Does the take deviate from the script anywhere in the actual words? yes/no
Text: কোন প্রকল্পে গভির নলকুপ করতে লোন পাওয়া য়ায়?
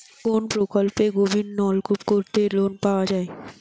no